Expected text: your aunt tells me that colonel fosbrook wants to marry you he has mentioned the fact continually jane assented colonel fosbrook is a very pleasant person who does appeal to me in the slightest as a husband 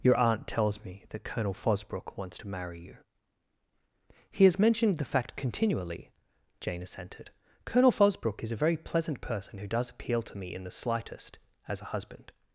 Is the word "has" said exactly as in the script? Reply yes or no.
yes